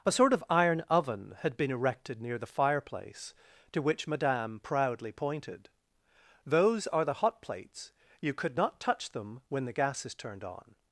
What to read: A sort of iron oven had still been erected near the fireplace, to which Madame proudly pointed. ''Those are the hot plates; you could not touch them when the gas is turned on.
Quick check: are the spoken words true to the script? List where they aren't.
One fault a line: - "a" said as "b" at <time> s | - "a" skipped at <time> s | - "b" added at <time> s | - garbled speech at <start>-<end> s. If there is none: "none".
- "still" skipped at 1.6 s